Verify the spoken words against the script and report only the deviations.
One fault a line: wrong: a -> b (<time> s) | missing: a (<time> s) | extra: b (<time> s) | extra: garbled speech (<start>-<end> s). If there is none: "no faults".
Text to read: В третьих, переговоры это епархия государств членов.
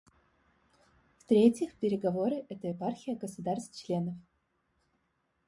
no faults